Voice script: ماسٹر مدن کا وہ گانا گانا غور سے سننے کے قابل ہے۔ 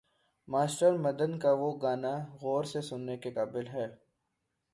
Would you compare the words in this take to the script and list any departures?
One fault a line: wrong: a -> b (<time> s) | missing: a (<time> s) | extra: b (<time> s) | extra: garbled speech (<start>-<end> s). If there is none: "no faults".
missing: گانا (2.1 s)